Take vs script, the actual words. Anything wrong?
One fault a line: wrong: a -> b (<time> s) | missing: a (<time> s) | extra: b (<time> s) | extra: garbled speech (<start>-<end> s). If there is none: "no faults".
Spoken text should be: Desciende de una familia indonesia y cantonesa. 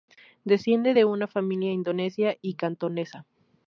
no faults